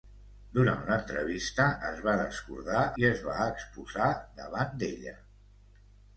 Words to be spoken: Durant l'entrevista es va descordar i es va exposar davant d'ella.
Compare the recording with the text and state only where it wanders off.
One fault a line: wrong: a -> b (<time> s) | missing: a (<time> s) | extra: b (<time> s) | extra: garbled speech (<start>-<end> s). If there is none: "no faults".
no faults